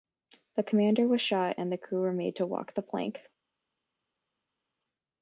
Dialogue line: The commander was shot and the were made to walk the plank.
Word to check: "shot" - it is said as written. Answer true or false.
true